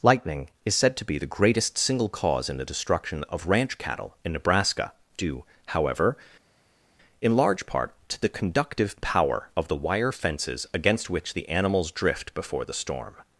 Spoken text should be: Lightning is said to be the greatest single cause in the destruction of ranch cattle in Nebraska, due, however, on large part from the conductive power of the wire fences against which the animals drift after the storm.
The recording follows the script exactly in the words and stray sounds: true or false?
false